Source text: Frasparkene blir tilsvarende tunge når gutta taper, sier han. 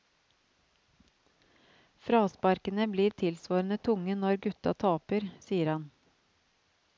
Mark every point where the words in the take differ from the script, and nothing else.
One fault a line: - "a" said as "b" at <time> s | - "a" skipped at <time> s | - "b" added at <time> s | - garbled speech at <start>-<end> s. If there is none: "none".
none